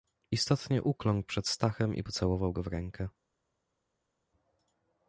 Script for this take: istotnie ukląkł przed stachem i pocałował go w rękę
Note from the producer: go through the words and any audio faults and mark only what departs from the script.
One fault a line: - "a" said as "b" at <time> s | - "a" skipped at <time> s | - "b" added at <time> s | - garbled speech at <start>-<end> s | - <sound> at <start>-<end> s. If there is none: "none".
none